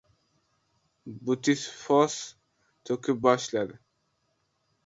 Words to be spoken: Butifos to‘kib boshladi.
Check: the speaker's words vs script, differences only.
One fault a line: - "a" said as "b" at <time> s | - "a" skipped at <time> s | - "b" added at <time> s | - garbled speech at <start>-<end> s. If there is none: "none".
none